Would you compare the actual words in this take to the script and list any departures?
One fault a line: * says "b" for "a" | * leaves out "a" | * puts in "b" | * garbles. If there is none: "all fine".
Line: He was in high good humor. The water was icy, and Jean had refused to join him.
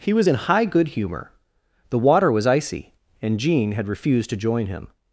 all fine